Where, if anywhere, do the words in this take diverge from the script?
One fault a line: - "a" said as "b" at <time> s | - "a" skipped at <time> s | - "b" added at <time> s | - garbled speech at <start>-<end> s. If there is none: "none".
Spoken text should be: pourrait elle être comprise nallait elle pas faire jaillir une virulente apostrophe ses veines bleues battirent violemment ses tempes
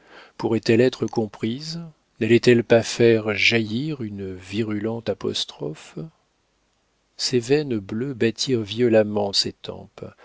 none